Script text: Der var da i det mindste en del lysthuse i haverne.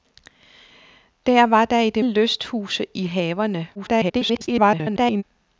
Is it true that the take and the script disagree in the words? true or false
true